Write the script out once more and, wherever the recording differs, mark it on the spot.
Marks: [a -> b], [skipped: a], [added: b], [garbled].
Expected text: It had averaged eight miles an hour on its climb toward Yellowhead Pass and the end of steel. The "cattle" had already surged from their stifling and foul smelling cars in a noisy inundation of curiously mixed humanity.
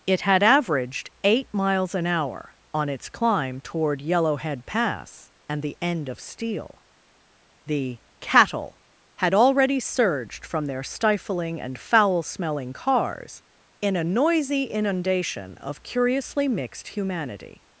It had averaged eight miles an hour on its climb toward Yellowhead Pass and the end of steel. The "cattle" had already surged from their stifling and foul smelling cars in a noisy inundation of curiously mixed humanity.